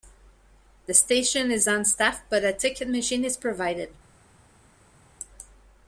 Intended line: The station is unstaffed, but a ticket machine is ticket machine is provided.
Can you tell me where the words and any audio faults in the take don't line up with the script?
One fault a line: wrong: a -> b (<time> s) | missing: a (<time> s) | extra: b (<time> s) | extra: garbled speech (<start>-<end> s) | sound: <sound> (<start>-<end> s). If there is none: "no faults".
missing: ticket machine is (3.4 s)